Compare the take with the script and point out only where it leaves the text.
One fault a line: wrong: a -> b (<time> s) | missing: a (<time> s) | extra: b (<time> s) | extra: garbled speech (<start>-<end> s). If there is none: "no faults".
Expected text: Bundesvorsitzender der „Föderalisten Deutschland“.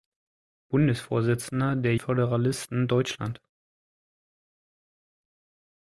no faults